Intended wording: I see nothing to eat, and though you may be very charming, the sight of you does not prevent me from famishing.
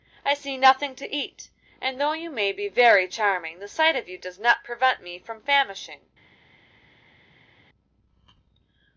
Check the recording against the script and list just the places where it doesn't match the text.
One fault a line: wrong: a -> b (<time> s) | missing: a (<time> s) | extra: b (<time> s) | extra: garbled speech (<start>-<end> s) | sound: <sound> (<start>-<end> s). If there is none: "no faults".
no faults